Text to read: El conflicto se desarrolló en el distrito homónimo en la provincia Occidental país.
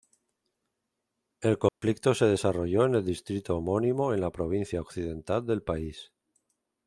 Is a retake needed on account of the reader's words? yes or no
yes